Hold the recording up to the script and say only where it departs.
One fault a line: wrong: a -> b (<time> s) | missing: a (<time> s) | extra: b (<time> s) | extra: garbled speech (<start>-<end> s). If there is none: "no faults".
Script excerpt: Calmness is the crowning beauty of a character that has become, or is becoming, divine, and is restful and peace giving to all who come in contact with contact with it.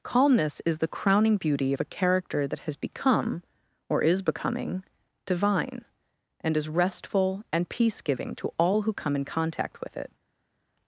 missing: contact with (10.0 s)